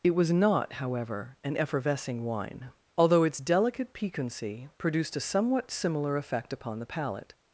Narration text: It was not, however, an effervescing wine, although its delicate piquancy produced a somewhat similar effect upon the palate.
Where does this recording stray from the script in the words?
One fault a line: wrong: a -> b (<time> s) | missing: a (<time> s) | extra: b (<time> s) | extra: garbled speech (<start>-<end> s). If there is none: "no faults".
no faults